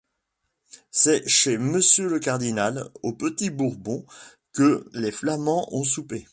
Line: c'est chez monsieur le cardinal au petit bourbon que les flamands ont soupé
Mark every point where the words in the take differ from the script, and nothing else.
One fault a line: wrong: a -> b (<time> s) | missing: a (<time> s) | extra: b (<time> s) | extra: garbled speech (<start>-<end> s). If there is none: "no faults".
no faults